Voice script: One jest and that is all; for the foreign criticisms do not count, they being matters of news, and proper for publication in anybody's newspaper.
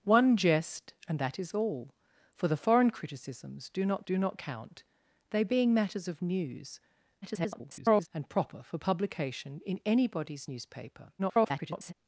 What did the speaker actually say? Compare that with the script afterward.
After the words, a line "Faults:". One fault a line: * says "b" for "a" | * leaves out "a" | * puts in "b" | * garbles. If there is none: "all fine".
One jest and that is all; for the foreign criticisms do not do not count, they being matters of news, [garbled] and proper for publication in anybody's newspaper. [garbled]
Faults:
* puts in "do not"
* garbles
* garbles